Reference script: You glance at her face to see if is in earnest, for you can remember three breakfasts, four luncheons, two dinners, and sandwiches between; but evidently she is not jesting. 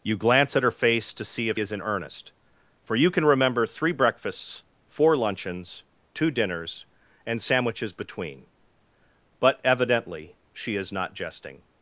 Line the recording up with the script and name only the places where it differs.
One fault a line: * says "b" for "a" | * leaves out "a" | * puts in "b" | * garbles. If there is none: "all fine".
all fine